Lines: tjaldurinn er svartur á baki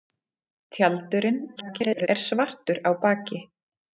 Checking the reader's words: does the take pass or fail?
fail